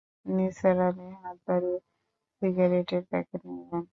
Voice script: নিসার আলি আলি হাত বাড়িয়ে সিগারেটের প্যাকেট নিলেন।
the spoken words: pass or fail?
fail